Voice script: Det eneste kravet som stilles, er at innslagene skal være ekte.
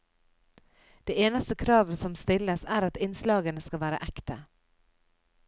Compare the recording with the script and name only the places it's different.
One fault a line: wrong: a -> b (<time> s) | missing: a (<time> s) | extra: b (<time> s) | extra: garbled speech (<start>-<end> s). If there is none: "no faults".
no faults